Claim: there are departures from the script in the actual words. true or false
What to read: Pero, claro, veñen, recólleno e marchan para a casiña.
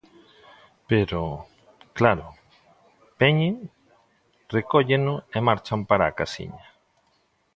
false